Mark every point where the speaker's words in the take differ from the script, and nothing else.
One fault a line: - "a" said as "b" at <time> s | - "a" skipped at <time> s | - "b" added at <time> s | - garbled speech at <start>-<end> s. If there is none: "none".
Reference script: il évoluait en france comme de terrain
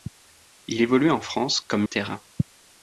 none